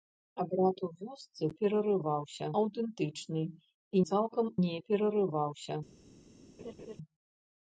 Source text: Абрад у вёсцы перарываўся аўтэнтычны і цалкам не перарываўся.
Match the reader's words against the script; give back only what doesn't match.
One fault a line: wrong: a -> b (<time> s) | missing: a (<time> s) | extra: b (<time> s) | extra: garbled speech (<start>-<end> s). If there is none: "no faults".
no faults